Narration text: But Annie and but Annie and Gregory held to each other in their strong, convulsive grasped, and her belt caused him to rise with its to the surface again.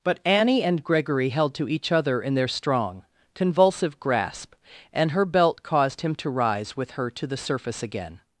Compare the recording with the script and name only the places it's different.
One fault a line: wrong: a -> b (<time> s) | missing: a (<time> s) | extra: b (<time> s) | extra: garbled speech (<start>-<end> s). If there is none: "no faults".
missing: but Annie and (0.8 s)
wrong: grasped -> grasp (4.0 s)
wrong: its -> her (6.9 s)